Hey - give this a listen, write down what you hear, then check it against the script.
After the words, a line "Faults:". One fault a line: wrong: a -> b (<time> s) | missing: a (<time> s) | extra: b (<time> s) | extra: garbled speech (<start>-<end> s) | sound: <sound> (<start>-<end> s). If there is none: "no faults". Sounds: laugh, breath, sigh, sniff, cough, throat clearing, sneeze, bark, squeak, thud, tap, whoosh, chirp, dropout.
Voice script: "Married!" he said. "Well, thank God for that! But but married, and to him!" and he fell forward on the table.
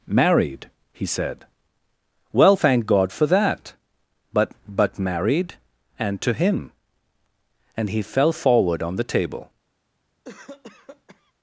"Married!" he said. "Well, thank God for that! But but married, and to him!" and he fell forward on the table.
Faults:
sound: cough (10.2-11.3 s)